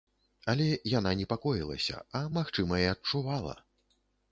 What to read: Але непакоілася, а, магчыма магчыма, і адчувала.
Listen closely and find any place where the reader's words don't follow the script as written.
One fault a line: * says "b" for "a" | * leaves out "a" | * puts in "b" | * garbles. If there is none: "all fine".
* puts in "яна"
* leaves out "магчыма"